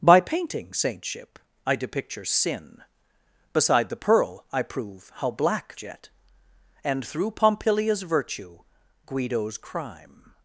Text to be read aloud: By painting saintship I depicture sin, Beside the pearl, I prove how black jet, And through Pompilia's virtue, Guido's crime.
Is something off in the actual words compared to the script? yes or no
no